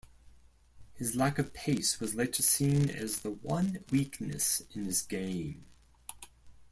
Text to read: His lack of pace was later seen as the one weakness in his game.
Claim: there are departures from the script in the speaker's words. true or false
false